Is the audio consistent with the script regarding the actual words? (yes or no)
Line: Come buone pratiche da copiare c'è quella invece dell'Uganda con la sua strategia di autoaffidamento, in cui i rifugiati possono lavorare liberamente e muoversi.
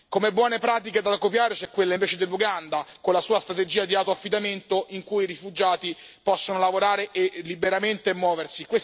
yes